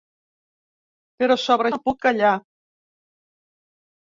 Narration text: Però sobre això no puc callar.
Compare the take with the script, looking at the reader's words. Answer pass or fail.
fail